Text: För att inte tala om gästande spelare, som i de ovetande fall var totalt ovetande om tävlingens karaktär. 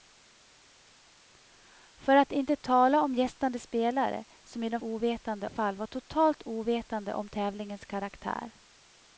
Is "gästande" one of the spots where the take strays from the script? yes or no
no